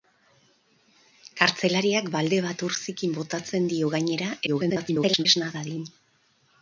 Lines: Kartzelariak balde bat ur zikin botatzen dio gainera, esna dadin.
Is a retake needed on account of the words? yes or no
yes